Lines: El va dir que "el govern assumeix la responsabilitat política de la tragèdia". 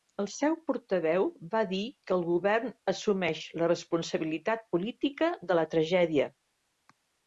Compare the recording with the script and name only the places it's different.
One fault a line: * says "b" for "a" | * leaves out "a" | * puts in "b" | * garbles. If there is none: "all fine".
* puts in "seu portaveu"